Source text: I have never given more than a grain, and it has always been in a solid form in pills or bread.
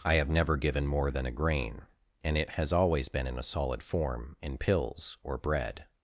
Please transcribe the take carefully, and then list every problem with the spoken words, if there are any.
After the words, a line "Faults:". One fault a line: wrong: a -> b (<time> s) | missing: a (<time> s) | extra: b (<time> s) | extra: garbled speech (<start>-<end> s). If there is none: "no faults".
I have never given more than a grain, and it has always been in a solid form in pills or bread.
Faults:
no faults